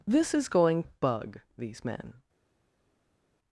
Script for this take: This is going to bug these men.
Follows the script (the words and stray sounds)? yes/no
no